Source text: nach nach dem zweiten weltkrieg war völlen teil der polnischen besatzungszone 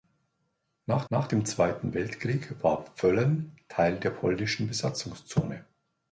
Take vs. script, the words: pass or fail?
pass